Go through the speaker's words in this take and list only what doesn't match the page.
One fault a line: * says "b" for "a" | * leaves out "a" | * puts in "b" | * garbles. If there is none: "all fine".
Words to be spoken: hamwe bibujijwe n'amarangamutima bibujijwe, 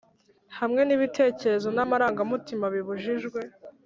* says "n'ibitekerezo" for "bibujijwe"